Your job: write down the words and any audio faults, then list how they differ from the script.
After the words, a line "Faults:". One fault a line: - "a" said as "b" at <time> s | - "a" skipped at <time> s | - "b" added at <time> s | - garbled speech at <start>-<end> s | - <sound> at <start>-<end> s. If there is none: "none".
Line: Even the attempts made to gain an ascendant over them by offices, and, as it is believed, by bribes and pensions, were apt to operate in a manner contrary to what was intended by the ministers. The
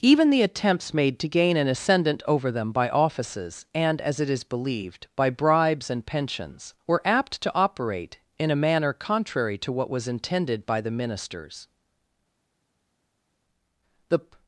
Even the attempts made to gain an ascendant over them by offices, and, as it is believed, by bribes and pensions, were apt to operate in a manner contrary to what was intended by the ministers. The
Faults:
none